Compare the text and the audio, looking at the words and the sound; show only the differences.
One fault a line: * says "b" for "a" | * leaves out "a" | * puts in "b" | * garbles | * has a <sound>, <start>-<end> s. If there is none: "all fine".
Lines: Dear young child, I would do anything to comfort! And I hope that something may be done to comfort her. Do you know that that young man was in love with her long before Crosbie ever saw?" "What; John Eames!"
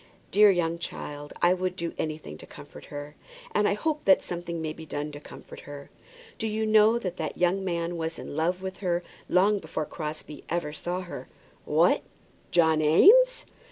* puts in "her"
* puts in "her"